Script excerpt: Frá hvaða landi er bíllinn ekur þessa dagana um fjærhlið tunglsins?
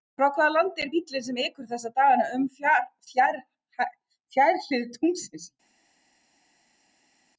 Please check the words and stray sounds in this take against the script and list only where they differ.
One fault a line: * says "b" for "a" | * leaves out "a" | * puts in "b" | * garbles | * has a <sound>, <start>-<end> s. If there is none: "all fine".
* puts in "sem"